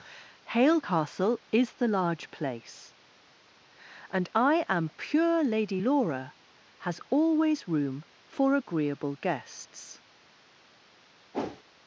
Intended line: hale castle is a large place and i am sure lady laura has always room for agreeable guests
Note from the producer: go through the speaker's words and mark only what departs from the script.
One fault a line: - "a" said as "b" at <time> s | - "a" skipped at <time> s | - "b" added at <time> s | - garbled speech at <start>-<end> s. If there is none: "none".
- "a" said as "the" at 1.7 s
- "sure" said as "pure" at 5.0 s